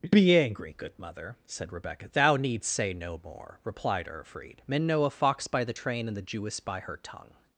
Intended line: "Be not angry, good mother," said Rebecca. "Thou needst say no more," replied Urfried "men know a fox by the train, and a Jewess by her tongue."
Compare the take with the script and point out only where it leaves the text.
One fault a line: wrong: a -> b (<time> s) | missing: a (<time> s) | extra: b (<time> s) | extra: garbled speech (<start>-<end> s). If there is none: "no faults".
missing: not (0.3 s)
wrong: a -> the (6.1 s)